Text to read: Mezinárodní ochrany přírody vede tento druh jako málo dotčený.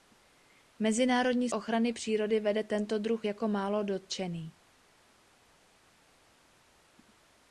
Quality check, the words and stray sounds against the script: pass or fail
pass